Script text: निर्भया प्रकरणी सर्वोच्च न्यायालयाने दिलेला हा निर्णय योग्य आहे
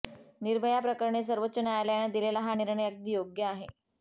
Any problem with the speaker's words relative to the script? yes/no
yes